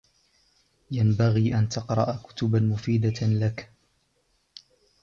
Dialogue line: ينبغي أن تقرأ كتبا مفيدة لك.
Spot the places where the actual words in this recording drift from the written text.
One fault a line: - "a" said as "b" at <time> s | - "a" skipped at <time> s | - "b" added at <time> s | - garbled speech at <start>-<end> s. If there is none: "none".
none